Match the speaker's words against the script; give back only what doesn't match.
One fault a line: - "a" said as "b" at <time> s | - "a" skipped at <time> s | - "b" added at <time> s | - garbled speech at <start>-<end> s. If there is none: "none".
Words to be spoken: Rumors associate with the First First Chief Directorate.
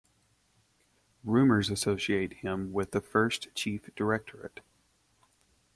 - "him" added at 2.4 s
- "First" skipped at 3.5 s